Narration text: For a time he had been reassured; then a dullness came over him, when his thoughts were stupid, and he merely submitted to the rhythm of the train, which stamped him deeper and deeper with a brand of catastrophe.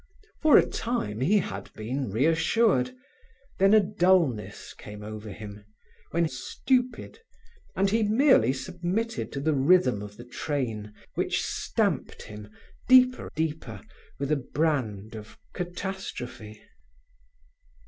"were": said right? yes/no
no